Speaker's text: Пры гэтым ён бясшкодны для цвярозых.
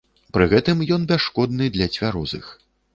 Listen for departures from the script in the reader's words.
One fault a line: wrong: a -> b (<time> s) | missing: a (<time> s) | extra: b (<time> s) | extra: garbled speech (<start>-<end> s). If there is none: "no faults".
no faults